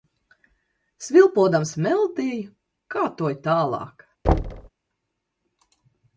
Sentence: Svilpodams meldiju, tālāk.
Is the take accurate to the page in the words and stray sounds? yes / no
no